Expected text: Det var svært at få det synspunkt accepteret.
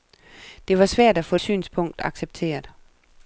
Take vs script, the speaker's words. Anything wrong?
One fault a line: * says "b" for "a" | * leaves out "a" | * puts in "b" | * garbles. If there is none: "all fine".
* leaves out "det"